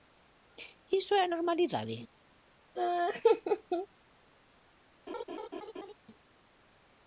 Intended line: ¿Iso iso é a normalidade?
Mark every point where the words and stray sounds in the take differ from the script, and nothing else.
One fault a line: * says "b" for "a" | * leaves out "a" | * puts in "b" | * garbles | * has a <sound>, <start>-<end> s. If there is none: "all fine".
* leaves out "iso"
* has a laugh, 2.8-3.9 s
* has a laugh, 5.1-5.9 s